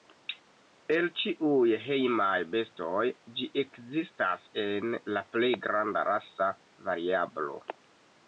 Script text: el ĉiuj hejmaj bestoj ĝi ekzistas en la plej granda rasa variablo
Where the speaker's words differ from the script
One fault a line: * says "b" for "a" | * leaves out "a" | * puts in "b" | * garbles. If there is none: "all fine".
all fine